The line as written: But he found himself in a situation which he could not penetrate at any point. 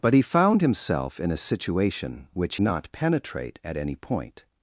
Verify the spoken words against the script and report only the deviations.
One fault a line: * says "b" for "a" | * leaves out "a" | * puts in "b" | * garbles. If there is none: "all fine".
* leaves out "he could"